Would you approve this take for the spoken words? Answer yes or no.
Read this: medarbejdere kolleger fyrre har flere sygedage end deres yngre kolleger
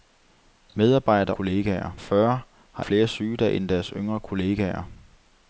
yes